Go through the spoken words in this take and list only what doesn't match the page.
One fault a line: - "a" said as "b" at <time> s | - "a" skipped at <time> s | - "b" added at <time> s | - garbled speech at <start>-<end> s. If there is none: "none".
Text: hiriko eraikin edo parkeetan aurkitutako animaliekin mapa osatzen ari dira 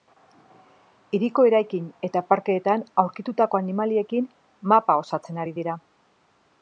- "edo" said as "eta" at 2.1 s